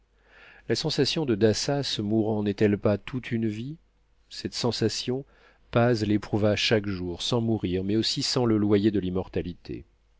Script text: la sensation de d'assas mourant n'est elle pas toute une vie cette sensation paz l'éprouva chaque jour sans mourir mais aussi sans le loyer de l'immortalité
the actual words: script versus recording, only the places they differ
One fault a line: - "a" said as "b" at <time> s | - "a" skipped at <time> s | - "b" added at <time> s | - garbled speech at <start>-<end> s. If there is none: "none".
none